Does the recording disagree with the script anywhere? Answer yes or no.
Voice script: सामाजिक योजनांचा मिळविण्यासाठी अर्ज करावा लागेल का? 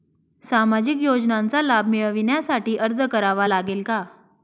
yes